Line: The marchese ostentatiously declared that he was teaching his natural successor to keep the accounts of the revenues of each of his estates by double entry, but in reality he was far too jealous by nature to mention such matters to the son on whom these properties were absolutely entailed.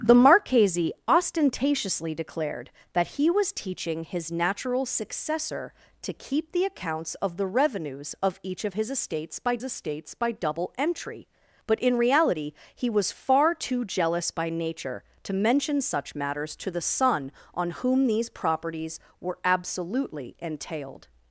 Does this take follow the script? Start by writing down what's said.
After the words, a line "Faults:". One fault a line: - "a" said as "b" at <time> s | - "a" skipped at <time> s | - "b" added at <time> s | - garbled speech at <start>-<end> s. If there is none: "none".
The marchese ostentatiously declared that he was teaching his natural successor to keep the accounts of the revenues of each of his estates by estates by double entry, but in reality he was far too jealous by nature to mention such matters to the son on whom these properties were absolutely entailed.
Faults:
- "estates by" added at 9.6 s